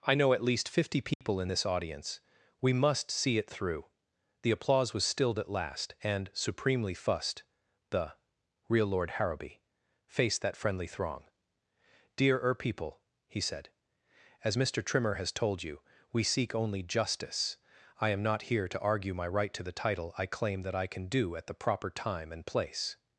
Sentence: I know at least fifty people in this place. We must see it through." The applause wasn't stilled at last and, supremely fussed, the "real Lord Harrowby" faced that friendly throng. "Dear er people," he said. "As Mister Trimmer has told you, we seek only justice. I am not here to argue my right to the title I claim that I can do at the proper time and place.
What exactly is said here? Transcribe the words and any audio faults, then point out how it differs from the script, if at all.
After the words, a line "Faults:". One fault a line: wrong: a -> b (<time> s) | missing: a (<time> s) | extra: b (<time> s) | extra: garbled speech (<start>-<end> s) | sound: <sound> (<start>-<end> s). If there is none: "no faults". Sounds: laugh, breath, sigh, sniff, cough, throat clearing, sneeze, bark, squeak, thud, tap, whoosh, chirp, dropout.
I know at least fifty people in this audience. We must see it through." The applause was stilled at last and, supremely fussed, the "real Lord Harrowby" faced that friendly throng. "Dear er people," he said. "As Mister Trimmer has told you, we seek only justice. I am not here to argue my right to the title I claim that I can do at the proper time and place.
Faults:
sound: dropout (1.1-1.2 s)
wrong: place -> audience (1.6 s)
wrong: wasn't -> was (4.9 s)